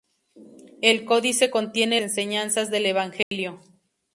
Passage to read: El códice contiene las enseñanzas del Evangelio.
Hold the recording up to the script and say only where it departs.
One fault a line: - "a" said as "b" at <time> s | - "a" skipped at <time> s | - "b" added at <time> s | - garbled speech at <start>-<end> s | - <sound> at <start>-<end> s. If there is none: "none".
- "las" skipped at 2.0 s
- dropout at 3.2-3.3 s